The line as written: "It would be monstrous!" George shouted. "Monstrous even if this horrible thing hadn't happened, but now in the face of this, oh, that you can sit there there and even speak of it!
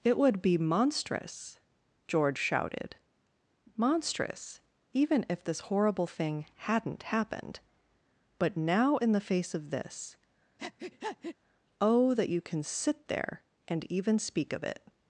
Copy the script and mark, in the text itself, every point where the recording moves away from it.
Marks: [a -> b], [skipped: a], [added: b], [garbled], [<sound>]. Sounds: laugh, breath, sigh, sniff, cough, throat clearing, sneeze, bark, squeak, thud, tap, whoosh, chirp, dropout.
"It would be monstrous!" George shouted. "Monstrous even if this horrible thing hadn't happened, but now in the face of this, [breath] oh, that you can sit there [skipped: there] and even speak of it!